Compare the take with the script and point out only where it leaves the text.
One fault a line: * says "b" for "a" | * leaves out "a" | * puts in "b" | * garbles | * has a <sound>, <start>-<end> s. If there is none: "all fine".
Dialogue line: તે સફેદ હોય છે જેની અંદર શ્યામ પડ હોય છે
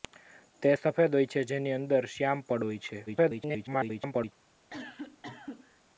* garbles
* has a cough, 4.7-5.8 s